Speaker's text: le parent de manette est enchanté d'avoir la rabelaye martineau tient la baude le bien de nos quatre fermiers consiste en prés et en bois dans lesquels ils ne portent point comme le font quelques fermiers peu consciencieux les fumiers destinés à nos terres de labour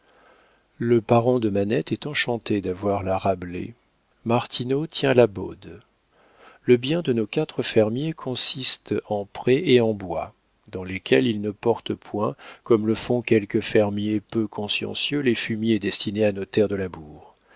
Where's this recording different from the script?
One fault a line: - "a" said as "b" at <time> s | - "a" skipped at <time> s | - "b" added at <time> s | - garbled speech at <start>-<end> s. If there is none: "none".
none